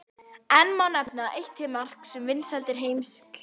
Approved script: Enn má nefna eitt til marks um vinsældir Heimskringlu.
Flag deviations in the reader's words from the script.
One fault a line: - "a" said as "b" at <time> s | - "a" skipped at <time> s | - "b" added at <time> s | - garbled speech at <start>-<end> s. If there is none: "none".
none